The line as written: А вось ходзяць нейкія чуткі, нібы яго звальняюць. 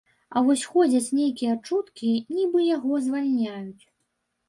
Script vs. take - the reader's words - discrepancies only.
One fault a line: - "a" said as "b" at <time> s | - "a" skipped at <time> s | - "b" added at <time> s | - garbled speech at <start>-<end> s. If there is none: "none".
none